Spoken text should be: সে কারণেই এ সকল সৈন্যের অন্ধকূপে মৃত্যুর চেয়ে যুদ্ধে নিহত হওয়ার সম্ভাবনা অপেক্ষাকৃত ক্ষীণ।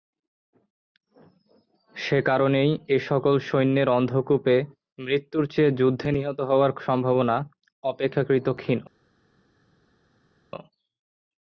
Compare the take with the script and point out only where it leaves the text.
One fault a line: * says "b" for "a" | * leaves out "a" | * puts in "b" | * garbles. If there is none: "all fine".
all fine